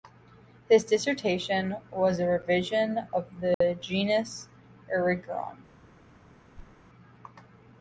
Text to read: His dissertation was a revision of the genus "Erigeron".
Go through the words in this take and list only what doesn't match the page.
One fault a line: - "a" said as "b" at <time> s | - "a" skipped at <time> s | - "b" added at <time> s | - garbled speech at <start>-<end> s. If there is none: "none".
none